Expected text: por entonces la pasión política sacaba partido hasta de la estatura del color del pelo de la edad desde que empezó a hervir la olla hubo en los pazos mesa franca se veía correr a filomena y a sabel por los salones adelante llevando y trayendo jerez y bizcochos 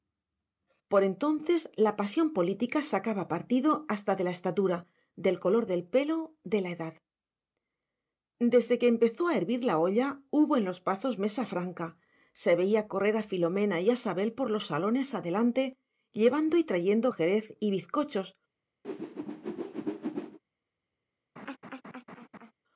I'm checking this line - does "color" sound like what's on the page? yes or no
yes